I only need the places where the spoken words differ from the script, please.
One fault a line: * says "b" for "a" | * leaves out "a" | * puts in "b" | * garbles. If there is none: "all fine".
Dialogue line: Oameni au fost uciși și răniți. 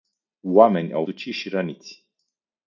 * leaves out "fost"